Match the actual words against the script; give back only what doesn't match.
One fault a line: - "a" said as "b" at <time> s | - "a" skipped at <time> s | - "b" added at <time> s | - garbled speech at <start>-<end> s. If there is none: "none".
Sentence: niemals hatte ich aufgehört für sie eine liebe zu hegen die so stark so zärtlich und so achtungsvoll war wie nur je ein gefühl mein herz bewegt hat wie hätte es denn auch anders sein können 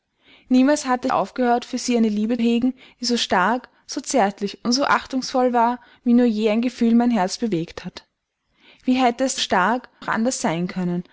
- "ich" skipped at 1.1 s
- "zu" skipped at 2.4 s
- "denn" said as "stark" at 9.4 s